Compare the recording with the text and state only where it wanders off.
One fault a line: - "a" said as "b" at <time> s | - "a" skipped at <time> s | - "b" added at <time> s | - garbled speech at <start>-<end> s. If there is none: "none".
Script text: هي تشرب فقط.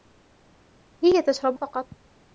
none